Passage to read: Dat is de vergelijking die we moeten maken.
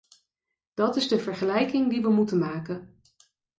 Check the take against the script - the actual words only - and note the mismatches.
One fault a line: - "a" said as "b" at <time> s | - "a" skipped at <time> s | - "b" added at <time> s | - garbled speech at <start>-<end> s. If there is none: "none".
none